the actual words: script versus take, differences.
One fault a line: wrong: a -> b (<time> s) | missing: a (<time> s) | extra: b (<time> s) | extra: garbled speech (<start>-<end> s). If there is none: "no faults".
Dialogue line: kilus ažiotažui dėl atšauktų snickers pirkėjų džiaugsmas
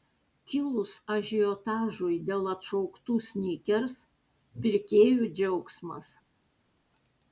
no faults